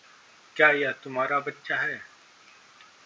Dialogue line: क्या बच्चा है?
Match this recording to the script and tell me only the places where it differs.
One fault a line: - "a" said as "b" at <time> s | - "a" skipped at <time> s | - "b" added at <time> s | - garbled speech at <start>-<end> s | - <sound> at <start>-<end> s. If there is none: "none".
- "यह तुम्हारा" added at 0.7 s